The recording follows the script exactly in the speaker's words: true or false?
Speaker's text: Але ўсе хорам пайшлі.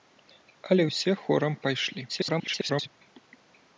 false